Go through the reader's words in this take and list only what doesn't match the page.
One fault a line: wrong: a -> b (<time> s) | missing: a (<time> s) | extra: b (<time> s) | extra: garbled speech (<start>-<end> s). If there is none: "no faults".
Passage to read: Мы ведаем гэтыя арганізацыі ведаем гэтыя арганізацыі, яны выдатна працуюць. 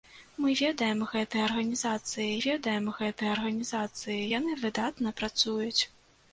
no faults